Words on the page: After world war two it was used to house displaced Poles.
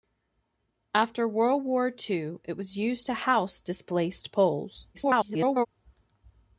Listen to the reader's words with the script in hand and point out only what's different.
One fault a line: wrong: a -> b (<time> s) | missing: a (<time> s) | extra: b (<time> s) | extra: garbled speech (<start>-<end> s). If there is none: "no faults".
extra: garbled speech (4.9-5.7 s)